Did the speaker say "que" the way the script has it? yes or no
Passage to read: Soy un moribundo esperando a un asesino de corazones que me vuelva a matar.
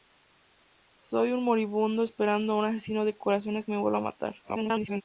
no